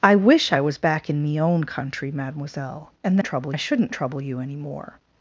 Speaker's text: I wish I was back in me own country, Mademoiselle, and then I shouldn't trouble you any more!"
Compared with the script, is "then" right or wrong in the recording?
wrong